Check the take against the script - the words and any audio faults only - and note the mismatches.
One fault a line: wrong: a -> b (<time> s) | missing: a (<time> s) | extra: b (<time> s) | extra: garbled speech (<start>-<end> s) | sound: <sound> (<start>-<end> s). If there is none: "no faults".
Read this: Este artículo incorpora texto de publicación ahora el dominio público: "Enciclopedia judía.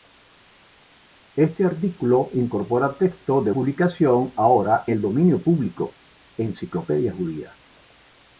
no faults